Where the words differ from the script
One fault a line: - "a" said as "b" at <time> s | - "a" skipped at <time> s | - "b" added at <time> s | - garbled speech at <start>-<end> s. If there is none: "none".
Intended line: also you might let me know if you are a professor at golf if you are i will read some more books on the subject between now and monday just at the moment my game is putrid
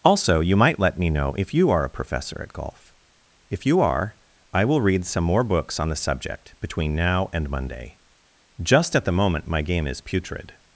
none